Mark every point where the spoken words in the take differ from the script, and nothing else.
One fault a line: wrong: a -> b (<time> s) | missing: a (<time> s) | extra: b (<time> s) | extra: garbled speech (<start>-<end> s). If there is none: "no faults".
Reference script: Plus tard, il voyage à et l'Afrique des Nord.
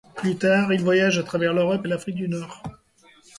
extra: travers l'Europe (1.2 s)
wrong: des -> du (2.1 s)